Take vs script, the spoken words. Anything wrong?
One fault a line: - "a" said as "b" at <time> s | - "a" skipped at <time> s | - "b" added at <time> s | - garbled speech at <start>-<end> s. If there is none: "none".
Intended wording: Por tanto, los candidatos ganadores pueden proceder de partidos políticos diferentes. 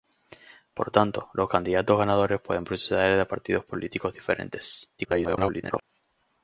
- garbled speech at 5.0-5.8 s